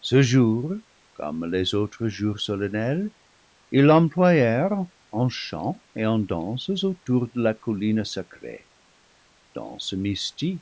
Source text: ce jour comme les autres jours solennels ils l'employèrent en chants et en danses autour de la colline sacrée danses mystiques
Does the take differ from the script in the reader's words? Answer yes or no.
no